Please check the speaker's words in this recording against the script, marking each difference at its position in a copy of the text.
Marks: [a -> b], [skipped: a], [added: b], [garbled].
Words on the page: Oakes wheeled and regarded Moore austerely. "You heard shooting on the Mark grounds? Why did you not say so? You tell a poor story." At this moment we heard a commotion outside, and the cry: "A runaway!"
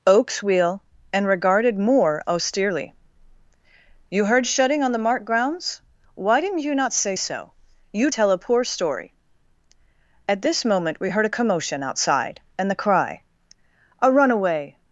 Oakes [wheeled -> wheel] and regarded Moore austerely. "You heard shooting on the Mark grounds? Why [did -> didn't] you not say so? You tell a poor story." At this moment we heard a commotion outside, and the cry: "A runaway!"